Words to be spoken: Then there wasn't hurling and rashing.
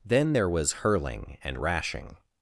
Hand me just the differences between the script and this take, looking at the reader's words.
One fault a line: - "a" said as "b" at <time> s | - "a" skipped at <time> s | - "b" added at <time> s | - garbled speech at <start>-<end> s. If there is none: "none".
- "wasn't" said as "was" at 0.5 s